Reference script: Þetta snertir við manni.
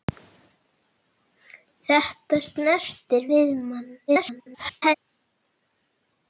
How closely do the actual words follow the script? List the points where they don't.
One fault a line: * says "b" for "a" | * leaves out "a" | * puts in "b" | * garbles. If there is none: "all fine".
* garbles